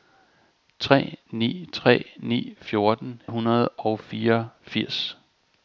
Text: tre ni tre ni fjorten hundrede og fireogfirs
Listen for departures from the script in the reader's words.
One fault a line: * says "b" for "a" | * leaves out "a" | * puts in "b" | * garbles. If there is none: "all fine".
all fine